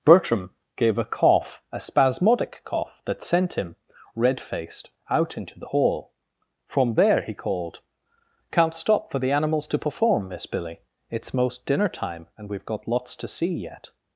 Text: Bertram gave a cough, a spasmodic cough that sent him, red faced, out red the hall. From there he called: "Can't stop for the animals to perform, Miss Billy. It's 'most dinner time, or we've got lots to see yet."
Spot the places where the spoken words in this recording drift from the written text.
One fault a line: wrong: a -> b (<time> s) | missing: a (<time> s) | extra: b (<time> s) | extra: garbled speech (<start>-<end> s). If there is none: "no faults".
wrong: red -> into (5.4 s)
wrong: or -> and (12.4 s)